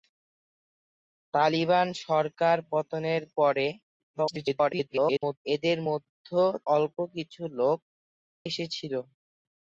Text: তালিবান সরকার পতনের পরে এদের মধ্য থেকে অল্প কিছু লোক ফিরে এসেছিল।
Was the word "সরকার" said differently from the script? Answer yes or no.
no